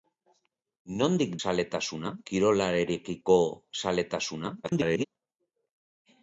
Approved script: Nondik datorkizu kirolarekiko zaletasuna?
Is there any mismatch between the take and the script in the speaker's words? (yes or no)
yes